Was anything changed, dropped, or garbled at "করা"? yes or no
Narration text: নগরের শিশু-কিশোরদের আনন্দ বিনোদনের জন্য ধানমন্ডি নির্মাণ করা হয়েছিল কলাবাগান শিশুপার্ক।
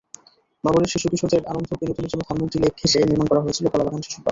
no